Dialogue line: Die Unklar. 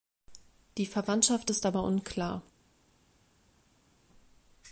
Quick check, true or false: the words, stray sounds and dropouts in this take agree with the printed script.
false